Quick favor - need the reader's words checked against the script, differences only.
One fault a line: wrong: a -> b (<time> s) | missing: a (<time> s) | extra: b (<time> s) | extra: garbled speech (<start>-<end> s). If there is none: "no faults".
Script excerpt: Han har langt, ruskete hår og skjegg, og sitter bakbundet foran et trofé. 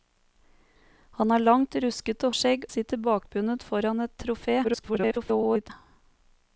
missing: hår (2.3 s)
missing: og (2.6 s)
extra: garbled speech (4.6-5.7 s)